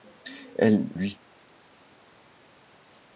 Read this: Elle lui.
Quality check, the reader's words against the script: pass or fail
pass